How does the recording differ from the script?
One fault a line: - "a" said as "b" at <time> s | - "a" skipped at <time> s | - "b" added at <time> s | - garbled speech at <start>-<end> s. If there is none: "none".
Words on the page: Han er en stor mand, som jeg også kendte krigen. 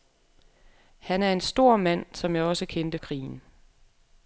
none